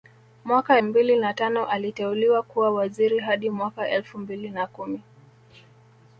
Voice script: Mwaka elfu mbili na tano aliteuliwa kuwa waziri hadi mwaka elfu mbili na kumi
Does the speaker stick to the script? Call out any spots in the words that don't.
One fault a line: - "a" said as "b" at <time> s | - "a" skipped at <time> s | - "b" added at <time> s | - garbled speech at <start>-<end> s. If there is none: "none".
- "elfu" skipped at 0.8 s